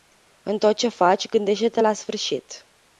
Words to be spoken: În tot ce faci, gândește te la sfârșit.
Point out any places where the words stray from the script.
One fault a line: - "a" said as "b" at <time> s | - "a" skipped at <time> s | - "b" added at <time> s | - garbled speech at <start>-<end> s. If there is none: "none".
none